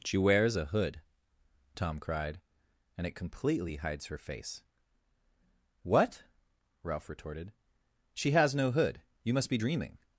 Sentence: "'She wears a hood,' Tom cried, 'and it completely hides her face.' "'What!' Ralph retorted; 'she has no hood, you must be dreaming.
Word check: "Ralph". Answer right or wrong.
right